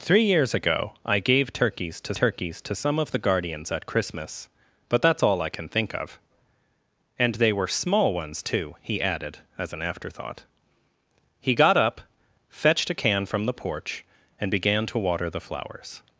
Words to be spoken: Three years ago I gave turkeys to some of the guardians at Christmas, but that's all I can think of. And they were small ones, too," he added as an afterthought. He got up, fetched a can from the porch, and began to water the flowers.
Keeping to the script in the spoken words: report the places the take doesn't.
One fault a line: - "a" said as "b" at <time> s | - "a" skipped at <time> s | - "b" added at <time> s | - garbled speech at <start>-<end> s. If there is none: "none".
- "turkeys to" added at 2.1 s